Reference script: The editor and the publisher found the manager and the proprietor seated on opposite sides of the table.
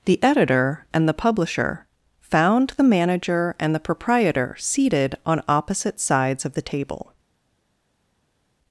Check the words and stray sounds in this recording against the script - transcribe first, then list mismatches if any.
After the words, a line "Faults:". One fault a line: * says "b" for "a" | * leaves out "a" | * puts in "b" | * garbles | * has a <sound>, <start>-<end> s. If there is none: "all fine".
The editor and the publisher found the manager and the proprietor seated on opposite sides of the table.
Faults:
all fine